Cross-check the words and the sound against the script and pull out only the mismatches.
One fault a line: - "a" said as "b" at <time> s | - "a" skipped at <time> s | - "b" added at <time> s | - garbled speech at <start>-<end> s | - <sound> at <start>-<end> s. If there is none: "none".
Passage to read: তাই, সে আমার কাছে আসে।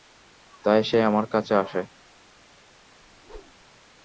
- whoosh at 3.0-3.7 s